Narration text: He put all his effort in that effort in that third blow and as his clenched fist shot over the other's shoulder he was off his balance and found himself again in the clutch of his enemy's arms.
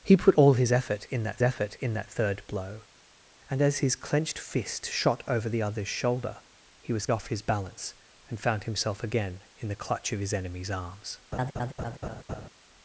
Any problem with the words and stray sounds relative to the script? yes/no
yes